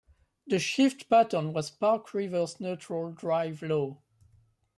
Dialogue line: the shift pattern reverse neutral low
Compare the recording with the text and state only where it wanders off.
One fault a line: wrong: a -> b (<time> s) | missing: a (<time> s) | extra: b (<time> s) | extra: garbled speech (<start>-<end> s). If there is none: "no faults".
extra: was park (1.5 s)
extra: drive (3.1 s)